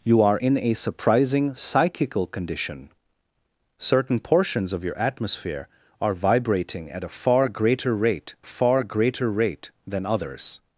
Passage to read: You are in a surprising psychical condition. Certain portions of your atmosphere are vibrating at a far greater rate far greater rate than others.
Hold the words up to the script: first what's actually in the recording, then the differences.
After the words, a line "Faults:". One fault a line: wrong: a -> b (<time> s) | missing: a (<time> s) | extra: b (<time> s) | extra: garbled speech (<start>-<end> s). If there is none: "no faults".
You are in a surprising psychical condition. Certain portions of your atmosphere are vibrating at a far greater rate far greater rate than others.
Faults:
no faults